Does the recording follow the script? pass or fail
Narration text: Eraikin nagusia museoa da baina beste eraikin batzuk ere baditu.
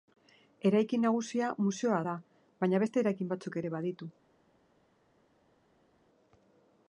pass